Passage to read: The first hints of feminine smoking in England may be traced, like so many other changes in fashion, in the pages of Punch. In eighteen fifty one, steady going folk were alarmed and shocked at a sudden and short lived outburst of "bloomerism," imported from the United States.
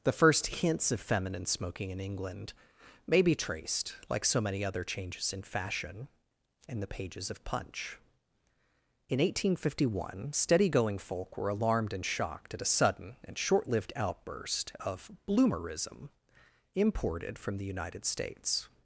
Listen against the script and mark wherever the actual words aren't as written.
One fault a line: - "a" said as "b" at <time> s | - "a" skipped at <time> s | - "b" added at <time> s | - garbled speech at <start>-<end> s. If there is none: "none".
none